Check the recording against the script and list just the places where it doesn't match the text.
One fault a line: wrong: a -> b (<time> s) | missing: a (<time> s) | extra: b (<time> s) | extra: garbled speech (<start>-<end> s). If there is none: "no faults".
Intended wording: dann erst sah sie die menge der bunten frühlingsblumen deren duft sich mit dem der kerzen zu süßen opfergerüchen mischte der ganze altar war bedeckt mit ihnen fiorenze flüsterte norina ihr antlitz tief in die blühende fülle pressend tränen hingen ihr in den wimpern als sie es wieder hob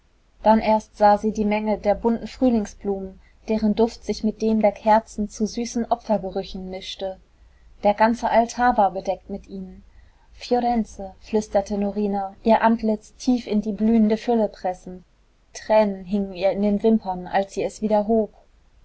no faults